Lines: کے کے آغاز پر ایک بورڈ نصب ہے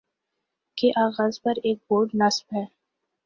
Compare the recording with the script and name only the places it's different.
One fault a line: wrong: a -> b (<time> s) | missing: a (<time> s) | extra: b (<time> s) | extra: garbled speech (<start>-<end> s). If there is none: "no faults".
missing: کے (0.9 s)